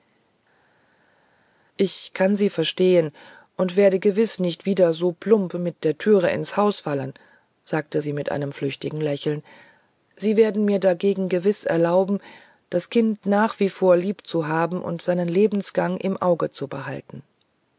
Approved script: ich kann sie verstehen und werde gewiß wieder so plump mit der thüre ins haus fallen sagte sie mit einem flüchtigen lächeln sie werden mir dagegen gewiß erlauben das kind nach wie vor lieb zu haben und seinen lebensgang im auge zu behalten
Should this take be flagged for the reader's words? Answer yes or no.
yes